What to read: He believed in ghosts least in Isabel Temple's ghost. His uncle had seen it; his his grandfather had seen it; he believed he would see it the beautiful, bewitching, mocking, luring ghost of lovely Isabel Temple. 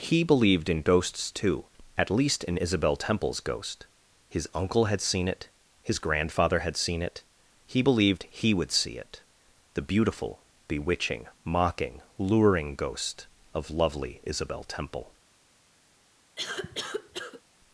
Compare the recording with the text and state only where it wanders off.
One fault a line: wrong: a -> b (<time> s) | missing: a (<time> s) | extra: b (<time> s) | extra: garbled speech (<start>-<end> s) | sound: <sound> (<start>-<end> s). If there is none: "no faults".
extra: too at (1.3 s)
missing: his (6.0 s)
sound: cough (16.4-17.4 s)